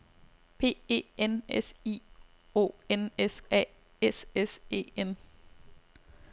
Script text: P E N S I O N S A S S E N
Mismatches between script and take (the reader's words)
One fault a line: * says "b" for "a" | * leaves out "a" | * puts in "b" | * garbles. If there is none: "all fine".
all fine